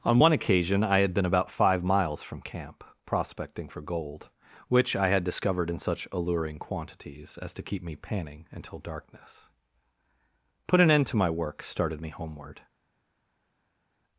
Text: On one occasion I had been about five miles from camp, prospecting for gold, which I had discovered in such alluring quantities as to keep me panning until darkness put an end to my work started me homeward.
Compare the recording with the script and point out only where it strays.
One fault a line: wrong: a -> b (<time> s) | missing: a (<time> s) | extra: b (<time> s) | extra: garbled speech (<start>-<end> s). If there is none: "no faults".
no faults